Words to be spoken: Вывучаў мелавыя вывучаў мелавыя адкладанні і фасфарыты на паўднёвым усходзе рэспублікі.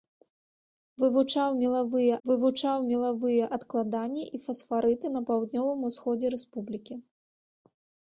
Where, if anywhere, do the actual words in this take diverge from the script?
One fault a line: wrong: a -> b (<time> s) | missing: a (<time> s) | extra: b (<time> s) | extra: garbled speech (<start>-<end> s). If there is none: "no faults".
no faults